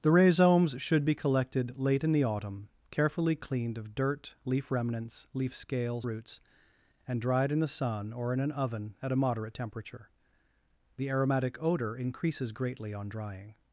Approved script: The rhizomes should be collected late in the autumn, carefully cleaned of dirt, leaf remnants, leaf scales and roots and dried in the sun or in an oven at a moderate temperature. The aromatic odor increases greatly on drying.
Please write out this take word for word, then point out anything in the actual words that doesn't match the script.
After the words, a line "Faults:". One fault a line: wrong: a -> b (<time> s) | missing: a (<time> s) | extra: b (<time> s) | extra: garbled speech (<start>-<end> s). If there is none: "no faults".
The rhizomes should be collected late in the autumn, carefully cleaned of dirt, leaf remnants, leaf scales roots and dried in the sun or in an oven at a moderate temperature. The aromatic odor increases greatly on drying.
Faults:
missing: and (6.1 s)